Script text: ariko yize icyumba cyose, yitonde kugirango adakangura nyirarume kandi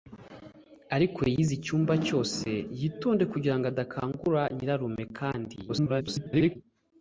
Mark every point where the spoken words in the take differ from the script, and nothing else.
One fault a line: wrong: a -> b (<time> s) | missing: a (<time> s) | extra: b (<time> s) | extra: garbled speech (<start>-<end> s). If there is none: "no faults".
extra: garbled speech (5.7-6.6 s)